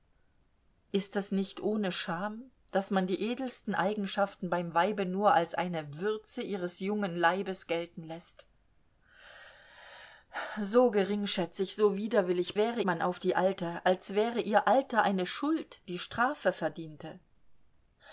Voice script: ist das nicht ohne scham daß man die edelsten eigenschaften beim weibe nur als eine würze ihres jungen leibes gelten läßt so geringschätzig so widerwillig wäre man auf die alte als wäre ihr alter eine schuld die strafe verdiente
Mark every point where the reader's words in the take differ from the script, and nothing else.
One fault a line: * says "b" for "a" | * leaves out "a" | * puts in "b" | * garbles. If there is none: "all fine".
all fine